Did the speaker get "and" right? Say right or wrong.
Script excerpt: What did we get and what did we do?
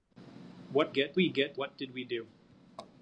wrong